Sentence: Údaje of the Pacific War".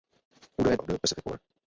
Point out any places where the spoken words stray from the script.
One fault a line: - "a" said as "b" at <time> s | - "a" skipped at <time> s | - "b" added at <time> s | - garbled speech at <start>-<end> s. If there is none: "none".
none